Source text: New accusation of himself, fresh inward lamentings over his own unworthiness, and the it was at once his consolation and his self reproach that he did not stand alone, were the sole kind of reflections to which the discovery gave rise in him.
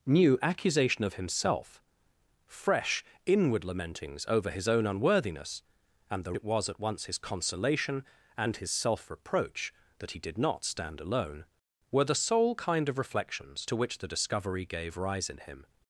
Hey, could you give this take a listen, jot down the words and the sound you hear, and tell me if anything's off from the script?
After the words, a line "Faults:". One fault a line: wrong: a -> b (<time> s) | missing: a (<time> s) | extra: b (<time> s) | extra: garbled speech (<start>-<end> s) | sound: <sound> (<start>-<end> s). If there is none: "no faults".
New accusation of himself, fresh inward lamentings over his own unworthiness, and the it was at once his consolation and his self reproach that he did not stand alone, were the sole kind of reflections to which the discovery gave rise in him.
Faults:
no faults